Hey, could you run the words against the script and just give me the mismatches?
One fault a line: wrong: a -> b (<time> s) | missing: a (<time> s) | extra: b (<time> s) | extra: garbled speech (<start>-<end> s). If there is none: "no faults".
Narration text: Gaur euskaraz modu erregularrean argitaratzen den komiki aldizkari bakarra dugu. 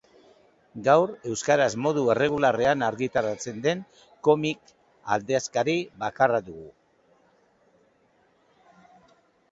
no faults